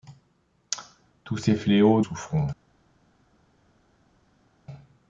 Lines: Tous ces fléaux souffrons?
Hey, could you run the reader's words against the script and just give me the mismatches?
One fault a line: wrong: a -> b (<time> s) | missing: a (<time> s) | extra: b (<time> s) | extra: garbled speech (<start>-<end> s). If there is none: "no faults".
no faults